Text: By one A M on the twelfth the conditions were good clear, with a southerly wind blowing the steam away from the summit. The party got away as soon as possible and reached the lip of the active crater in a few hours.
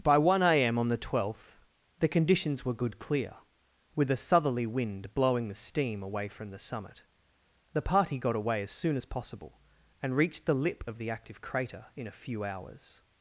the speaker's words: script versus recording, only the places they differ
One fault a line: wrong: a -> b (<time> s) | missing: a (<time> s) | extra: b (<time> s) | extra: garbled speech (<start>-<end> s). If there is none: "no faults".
no faults